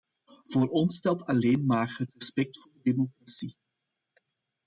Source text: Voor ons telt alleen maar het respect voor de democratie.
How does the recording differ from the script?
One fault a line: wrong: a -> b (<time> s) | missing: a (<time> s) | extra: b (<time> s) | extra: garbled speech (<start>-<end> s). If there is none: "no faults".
no faults